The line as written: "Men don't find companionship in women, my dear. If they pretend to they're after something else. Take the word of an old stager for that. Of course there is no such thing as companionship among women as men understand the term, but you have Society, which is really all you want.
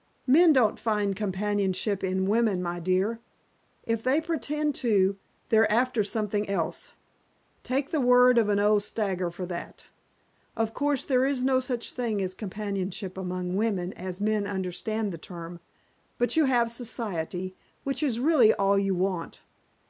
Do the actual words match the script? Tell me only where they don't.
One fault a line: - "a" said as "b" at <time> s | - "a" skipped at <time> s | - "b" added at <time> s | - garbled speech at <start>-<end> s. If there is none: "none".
none